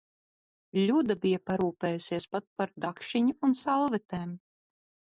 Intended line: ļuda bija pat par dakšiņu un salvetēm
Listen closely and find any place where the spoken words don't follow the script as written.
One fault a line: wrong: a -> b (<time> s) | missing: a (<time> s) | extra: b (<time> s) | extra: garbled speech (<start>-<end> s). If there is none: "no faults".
extra: parūpējusies (1.5 s)